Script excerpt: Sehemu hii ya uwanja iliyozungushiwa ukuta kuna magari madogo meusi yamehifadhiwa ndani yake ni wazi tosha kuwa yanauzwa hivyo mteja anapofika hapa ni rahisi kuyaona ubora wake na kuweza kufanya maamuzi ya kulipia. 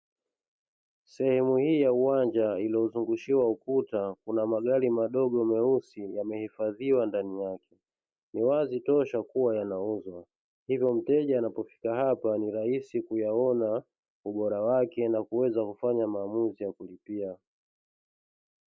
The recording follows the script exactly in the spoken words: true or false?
true